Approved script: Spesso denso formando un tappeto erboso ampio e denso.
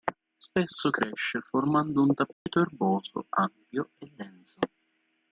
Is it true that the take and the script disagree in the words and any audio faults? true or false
true